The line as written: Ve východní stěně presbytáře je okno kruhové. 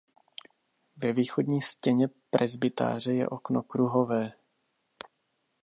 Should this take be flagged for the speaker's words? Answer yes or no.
no